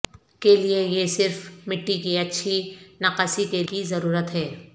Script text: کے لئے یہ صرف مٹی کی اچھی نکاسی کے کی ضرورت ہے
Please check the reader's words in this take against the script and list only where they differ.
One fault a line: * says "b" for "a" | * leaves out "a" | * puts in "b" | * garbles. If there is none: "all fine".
all fine